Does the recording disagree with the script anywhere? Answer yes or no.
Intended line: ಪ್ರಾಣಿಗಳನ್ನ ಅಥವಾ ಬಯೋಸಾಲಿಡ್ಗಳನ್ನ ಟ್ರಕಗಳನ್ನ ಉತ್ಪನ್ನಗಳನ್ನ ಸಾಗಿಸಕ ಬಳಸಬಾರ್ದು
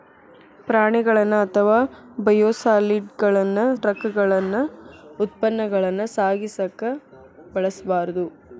no